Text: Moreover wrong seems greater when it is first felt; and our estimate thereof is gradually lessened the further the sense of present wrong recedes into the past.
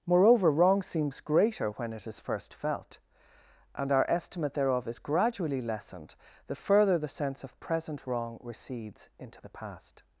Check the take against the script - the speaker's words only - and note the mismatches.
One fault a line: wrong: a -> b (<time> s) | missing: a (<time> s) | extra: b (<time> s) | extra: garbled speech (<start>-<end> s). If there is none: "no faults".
no faults